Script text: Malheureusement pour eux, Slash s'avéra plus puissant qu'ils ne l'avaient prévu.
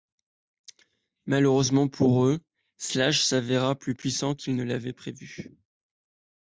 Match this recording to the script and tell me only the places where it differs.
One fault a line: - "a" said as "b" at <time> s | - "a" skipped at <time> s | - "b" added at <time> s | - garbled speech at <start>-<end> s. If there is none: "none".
none